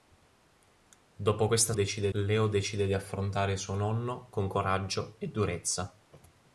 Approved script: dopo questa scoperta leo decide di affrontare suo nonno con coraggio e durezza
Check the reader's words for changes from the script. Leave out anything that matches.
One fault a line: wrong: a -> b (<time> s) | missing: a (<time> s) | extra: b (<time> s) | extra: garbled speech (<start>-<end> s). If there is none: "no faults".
wrong: scoperta -> decide (1.7 s)